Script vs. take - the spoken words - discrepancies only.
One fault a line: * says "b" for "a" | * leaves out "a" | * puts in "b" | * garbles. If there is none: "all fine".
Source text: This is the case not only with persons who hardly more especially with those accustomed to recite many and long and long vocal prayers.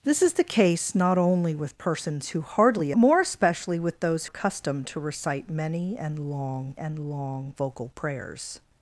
all fine